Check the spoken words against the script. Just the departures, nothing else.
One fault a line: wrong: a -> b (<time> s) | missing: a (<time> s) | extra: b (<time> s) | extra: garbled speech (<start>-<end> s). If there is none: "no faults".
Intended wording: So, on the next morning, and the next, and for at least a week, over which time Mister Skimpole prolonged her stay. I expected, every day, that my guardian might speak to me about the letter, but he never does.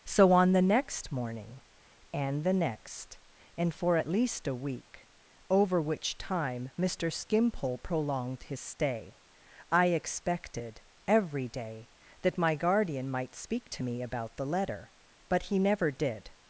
wrong: her -> his (8.4 s)
wrong: does -> did (15.9 s)